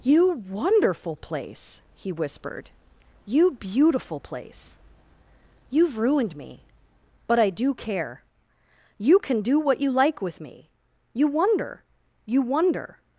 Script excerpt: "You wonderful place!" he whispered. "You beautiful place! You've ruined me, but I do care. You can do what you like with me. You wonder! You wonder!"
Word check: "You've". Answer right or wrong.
right